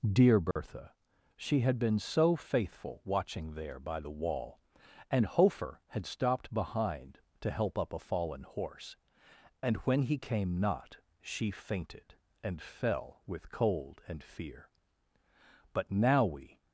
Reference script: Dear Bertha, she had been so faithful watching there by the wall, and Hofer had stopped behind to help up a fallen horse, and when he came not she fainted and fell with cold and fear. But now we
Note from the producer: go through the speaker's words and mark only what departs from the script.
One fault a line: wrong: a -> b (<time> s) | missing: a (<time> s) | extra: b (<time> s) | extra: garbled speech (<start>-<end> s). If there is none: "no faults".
no faults